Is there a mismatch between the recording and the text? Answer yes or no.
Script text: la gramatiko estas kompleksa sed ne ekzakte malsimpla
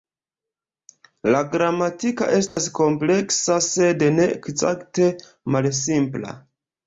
no